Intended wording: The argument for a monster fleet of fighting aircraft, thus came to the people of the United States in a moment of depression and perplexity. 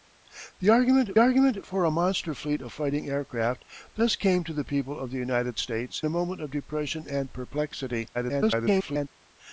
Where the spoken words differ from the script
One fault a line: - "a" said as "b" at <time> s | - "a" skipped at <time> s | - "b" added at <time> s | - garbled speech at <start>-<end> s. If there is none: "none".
- "argument" added at 1.2 s
- "in" skipped at 6.0 s
- garbled speech at 8.1-9.1 s